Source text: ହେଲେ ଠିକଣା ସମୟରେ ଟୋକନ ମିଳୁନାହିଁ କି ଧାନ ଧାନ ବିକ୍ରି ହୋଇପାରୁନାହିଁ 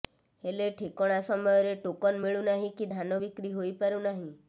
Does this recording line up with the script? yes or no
no